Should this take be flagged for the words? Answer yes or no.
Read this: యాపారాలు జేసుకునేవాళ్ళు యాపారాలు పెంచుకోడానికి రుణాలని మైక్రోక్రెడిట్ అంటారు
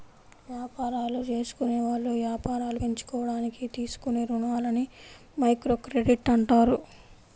yes